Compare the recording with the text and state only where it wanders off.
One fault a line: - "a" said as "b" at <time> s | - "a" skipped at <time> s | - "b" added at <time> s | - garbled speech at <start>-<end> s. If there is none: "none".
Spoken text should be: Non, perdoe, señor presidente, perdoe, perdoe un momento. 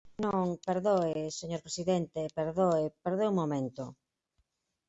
none